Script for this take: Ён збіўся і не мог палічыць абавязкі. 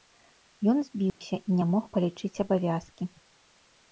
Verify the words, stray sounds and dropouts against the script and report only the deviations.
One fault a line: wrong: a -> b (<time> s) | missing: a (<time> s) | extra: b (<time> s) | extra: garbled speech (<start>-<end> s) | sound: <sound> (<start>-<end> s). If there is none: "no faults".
sound: dropout (1.1-1.2 s)